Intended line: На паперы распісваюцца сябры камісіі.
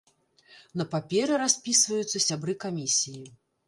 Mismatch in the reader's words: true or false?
false